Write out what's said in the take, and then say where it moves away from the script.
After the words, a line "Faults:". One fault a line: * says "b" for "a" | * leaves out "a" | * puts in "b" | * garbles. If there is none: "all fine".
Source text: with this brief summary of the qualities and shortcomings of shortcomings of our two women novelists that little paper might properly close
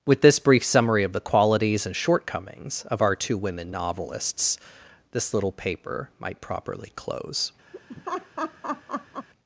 with this brief summary of the qualities and shortcomings of our two women novelists this little paper might properly close
Faults:
* leaves out "shortcomings of"
* says "this" for "that"